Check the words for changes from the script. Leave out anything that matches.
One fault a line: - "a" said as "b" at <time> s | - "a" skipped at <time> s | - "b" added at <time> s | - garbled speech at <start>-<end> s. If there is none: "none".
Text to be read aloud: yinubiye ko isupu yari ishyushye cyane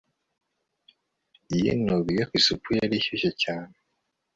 - "ko" skipped at 2.2 s